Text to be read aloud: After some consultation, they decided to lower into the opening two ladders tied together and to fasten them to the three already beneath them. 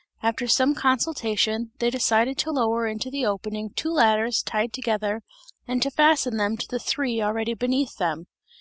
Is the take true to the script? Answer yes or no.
yes